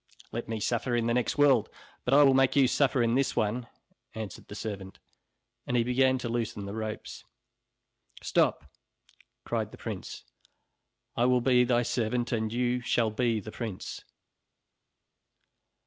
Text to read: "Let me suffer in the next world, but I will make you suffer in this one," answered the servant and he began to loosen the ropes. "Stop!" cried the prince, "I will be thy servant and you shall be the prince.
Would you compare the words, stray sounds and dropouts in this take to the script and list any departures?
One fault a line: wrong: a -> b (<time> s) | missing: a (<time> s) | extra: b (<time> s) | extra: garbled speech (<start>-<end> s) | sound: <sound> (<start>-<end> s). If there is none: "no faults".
no faults